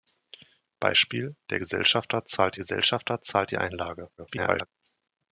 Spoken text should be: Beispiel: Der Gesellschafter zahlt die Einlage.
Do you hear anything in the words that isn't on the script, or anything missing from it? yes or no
yes